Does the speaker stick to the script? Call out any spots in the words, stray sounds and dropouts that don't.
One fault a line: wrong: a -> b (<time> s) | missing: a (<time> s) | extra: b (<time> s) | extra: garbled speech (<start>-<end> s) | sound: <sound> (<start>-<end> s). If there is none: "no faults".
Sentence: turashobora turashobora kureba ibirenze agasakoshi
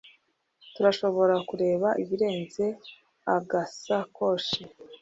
missing: turashobora (1.4 s)